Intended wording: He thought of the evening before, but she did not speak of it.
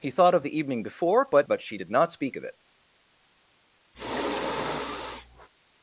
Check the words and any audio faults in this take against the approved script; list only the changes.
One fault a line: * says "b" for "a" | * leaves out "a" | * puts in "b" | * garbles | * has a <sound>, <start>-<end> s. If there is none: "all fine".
* puts in "but"
* has a sigh, 3.9-5.5 s